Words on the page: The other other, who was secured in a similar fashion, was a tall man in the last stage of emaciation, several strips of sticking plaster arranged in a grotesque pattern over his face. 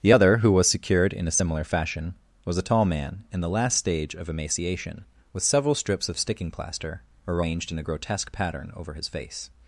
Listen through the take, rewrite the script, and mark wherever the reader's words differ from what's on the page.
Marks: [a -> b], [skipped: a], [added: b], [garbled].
The other [skipped: other,] who was secured in a similar fashion, was a tall man in the last stage of emaciation, [added: with] several strips of sticking plaster arranged in a grotesque pattern over his face.